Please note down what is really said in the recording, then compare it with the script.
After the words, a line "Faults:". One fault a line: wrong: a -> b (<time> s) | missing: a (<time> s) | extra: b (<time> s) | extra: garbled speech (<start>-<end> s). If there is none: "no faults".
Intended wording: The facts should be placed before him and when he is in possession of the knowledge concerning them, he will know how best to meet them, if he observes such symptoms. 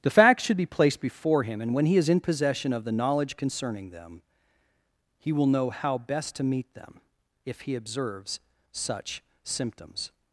The facts should be placed before him and when he is in possession of the knowledge concerning them, he will know how best to meet them, if he observes such symptoms.
Faults:
no faults